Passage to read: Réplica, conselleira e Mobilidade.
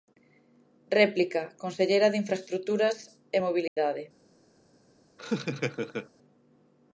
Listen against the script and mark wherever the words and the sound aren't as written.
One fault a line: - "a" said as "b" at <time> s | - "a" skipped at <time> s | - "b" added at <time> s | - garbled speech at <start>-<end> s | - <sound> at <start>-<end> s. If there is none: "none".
- "de Infraestruturas" added at 2.1 s
- dropout at 3.7-3.8 s
- laugh at 5.2-6.1 s